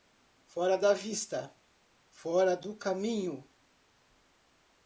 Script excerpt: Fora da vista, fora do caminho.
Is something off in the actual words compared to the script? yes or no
no